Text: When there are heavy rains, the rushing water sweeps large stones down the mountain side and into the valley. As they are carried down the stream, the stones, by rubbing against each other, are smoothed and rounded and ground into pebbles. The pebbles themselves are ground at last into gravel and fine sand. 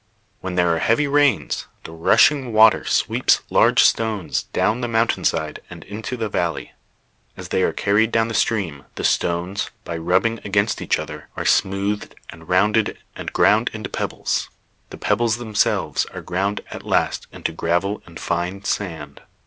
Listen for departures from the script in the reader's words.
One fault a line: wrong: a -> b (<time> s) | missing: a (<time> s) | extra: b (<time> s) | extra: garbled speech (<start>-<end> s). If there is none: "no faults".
no faults